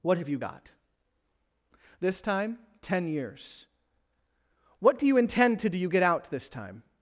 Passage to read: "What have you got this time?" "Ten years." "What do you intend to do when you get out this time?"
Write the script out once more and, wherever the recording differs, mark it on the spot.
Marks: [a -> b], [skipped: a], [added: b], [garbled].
"What have you got this time?" "Ten years." "What do you intend to do [skipped: when] you get out this time?"